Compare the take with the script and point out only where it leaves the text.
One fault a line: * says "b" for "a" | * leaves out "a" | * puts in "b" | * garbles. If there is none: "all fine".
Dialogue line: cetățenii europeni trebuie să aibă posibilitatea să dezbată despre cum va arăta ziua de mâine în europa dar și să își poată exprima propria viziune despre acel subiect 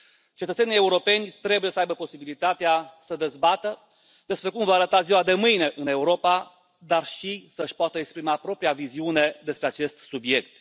* says "acest" for "acel"